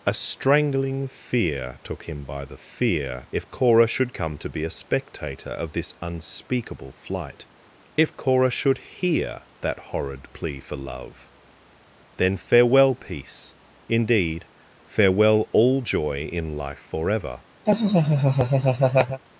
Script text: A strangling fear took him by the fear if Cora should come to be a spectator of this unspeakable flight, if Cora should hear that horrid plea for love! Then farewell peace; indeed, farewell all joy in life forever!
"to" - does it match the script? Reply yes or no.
yes